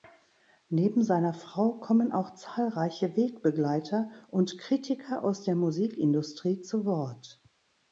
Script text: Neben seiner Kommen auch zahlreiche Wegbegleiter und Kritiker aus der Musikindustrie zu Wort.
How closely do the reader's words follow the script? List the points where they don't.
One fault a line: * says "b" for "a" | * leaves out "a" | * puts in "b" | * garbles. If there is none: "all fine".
* puts in "Frau"